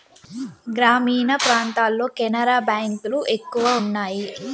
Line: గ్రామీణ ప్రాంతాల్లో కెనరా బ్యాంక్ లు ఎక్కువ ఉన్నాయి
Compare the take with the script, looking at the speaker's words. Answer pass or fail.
pass